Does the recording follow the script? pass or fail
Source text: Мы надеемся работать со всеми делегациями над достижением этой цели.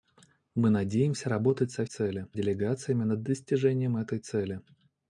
fail